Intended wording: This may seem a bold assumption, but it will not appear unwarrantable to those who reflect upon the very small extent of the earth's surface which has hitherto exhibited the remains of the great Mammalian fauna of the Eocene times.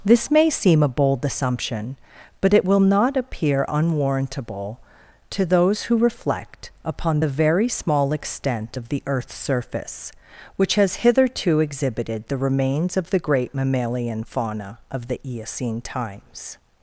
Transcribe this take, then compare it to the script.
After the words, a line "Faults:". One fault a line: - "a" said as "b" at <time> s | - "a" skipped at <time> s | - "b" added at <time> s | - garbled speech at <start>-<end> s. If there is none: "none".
This may seem a bold assumption, but it will not appear unwarrantable to those who reflect upon the very small extent of the earth's surface which has hitherto exhibited the remains of the great Mammalian fauna of the Eocene times.
Faults:
none